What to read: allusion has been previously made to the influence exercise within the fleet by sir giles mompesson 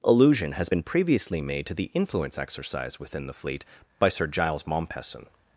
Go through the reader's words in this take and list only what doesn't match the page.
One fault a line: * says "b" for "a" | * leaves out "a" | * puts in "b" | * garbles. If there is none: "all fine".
all fine